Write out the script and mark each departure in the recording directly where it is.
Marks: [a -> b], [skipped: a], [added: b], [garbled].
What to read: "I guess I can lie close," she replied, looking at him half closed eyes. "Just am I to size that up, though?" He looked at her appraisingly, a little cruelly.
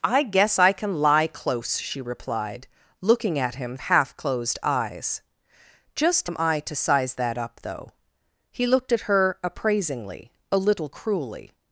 "I guess I can lie close," she replied, looking at him half closed eyes. "Just am I to size that up, though?" He looked at her appraisingly, a little cruelly.